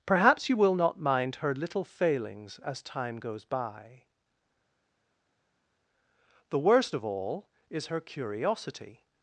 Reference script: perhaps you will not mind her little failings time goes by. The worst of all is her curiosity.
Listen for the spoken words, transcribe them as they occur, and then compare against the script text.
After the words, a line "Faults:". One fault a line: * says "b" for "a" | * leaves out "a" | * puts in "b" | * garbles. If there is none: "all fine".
perhaps you will not mind her little failings as time goes by. The worst of all is her curiosity.
Faults:
* puts in "as"